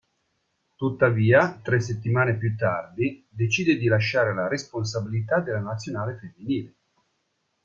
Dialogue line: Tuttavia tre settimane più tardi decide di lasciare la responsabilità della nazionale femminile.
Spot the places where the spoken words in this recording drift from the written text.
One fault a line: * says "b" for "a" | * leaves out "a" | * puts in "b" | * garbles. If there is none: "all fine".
all fine